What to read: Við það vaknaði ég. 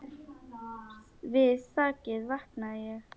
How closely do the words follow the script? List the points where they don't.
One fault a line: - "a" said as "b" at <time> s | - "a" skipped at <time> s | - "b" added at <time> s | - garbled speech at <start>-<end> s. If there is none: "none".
none